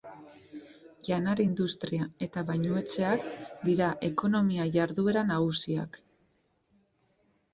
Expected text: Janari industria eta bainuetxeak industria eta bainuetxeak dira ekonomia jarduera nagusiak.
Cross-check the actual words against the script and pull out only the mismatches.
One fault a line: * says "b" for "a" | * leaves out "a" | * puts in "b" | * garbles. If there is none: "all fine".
* leaves out "industria eta bainuetxeak"